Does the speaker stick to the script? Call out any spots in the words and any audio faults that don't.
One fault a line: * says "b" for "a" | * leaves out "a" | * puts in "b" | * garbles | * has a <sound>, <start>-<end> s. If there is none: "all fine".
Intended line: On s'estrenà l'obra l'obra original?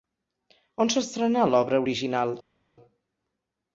* leaves out "l'obra"